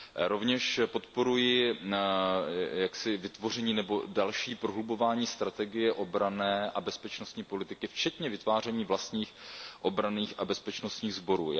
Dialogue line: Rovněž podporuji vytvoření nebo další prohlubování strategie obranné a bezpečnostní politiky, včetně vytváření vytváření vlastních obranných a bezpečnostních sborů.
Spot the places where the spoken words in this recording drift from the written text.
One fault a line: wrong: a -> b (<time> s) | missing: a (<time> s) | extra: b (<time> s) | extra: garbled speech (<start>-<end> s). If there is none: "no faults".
missing: vytváření (8.8 s)